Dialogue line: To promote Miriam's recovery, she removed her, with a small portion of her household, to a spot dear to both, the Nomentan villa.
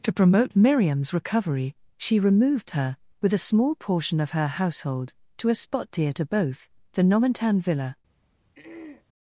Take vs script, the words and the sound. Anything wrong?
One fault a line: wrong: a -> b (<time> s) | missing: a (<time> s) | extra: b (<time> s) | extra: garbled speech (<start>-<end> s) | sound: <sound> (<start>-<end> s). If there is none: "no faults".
sound: throat clearing (8.5-9.1 s)